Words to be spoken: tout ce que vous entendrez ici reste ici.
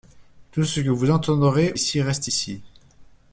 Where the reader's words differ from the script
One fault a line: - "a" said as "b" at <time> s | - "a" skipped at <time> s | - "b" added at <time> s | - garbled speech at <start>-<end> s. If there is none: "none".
none